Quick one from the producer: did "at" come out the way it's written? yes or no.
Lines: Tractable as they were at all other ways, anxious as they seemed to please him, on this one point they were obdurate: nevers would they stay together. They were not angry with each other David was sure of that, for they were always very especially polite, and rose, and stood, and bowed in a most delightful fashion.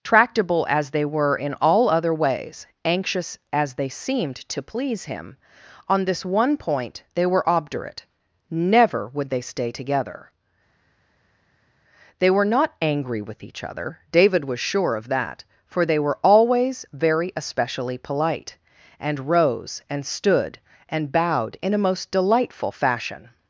no